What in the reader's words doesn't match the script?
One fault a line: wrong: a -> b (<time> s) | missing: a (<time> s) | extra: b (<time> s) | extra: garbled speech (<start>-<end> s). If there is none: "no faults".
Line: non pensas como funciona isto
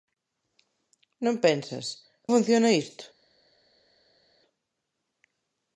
missing: como (1.9 s)